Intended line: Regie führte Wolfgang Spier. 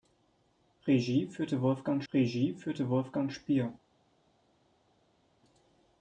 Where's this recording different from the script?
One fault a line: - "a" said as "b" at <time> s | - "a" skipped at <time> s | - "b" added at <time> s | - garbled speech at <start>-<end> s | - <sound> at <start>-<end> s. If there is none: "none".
- "regie führte Wolfgang" added at 2.1 s